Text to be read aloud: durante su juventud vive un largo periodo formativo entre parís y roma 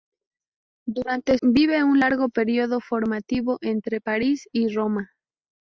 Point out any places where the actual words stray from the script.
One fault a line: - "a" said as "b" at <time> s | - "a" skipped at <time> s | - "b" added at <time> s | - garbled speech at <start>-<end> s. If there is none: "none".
- "su juventud" skipped at 1.4 s